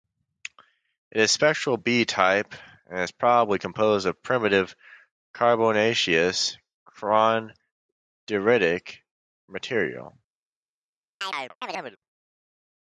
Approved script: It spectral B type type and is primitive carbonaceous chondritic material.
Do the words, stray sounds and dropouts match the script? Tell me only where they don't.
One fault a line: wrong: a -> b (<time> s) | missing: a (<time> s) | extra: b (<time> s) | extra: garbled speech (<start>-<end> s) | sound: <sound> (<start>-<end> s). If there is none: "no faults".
extra: is (1.2 s)
missing: type (2.5 s)
extra: probably composed of (3.1 s)
sound: chirp (11.2-12.0 s)